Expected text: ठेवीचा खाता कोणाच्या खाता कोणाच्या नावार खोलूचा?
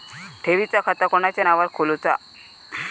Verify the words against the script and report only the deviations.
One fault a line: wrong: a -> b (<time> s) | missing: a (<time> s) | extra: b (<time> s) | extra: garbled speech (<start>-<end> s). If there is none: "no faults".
missing: खाता कोणाच्या (1.4 s)